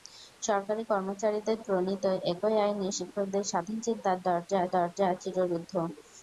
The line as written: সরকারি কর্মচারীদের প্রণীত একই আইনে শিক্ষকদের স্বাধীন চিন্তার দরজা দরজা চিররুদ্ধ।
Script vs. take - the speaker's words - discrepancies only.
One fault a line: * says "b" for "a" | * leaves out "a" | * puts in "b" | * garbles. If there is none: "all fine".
all fine